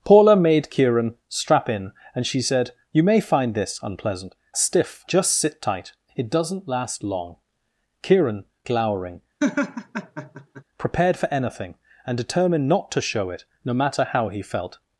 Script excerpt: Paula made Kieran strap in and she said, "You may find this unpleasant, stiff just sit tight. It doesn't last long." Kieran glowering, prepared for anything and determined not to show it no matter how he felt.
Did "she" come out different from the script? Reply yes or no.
no